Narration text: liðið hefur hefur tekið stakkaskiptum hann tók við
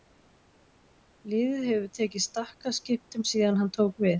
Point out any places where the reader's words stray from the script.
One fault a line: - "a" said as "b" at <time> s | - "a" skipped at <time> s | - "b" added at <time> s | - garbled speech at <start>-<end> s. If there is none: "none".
- "hefur" skipped at 1.9 s
- "síðan" added at 3.3 s